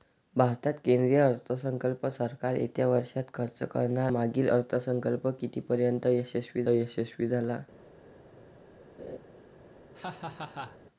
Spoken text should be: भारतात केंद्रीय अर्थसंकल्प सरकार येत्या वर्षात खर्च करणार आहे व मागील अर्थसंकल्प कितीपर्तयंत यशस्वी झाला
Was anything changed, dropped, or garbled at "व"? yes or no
yes